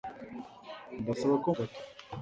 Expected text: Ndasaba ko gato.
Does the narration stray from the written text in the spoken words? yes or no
no